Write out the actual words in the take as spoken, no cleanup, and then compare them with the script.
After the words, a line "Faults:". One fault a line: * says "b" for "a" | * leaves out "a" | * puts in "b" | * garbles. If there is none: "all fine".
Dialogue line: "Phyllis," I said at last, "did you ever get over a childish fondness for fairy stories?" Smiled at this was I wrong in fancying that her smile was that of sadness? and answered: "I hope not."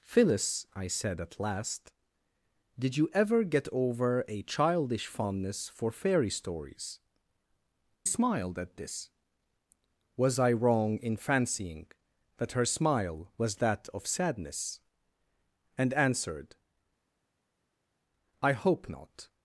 "Phyllis," I said at last, "did you ever get over a childish fondness for fairy stories?" Smiled at this was I wrong in fancying that her smile was that of sadness? and answered: "I hope not."
Faults:
all fine